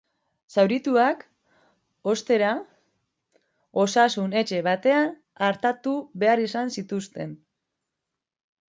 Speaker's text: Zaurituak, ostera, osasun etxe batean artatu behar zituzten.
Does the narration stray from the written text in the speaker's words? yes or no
yes